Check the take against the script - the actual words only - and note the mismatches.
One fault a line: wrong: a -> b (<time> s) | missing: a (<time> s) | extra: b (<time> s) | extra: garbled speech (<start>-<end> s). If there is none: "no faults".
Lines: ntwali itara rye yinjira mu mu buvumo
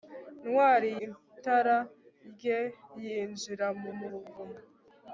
no faults